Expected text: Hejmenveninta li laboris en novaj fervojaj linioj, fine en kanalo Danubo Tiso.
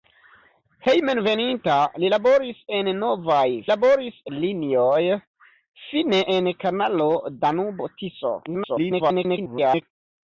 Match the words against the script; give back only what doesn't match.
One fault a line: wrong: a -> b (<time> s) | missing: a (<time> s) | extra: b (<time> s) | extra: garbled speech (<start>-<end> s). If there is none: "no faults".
wrong: fervojaj -> laboris (3.7 s)
extra: garbled speech (8.5-9.8 s)